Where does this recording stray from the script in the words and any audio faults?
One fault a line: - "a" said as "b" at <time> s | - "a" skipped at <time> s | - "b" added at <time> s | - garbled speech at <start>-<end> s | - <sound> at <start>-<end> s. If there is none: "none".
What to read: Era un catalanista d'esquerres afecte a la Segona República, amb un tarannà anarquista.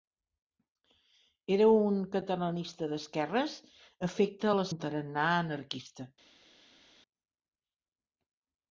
- "Segona República amb" skipped at 4.7 s